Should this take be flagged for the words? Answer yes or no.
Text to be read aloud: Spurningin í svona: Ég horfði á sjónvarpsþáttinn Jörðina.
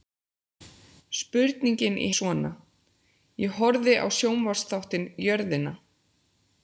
no